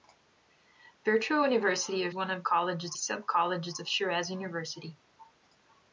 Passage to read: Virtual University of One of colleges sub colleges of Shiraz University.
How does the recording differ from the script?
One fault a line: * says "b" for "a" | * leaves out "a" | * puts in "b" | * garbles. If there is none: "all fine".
all fine